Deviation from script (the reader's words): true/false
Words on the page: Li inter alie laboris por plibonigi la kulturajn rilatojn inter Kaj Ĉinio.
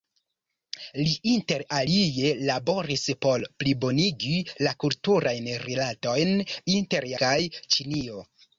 false